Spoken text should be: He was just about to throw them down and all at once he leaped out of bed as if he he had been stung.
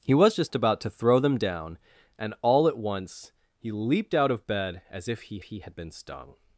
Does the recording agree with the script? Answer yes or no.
yes